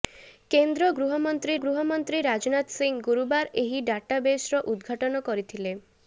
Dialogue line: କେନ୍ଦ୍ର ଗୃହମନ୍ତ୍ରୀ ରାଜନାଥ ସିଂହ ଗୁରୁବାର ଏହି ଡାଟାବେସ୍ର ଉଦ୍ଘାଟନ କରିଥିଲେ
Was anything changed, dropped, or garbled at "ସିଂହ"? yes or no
no